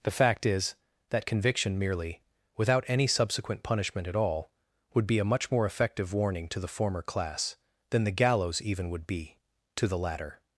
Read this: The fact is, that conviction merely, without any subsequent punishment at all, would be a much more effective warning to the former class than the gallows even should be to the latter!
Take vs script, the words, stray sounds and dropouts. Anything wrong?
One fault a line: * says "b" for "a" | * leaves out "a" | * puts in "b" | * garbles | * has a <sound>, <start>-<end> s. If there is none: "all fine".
* says "would" for "should"